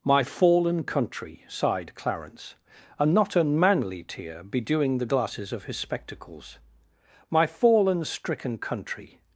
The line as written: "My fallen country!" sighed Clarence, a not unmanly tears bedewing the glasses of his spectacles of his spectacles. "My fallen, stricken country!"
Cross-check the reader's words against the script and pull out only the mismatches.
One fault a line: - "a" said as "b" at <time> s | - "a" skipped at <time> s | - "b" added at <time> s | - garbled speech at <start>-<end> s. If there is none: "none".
- "tears" said as "tear" at 4.0 s
- "of his spectacles" skipped at 6.6 s